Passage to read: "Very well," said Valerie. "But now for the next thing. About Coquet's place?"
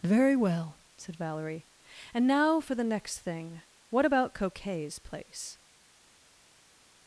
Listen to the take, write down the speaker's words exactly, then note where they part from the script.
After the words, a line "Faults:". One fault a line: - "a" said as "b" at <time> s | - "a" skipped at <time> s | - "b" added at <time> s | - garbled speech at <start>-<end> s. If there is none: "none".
"Very well," said Valerie. "And now for the next thing. What about Coquet's place?"
Faults:
- "But" said as "And" at 2.1 s
- "What" added at 3.9 s